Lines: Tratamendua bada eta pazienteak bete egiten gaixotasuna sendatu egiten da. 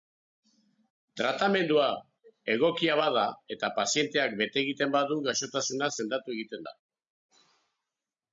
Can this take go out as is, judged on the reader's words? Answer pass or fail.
fail